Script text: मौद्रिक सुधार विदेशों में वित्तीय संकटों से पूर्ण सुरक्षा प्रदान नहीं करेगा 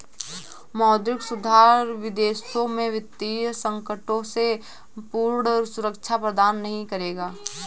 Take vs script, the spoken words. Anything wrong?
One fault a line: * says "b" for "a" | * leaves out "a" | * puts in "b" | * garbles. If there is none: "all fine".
all fine